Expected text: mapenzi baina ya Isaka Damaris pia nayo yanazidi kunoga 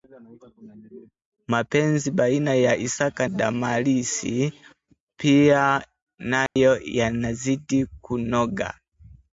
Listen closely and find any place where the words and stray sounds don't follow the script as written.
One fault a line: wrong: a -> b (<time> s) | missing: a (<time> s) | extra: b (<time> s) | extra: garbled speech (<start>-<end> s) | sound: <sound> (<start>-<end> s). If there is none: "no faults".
sound: dropout (6.5-6.6 s)